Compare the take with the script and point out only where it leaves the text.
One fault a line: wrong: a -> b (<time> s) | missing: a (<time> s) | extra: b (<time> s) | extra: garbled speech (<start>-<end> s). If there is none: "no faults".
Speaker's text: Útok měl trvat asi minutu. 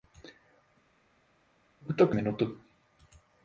missing: měl trvat asi (2.2 s)